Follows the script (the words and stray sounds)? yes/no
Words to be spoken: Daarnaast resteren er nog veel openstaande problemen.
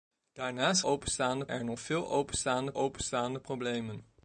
no